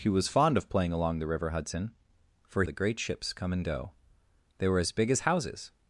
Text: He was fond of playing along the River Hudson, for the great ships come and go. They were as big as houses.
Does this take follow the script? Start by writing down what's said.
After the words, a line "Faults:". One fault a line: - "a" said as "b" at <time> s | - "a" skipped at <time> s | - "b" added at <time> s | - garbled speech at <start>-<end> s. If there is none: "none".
He was fond of playing along the River Hudson, for the great ships come and go. They were as big as houses.
Faults:
none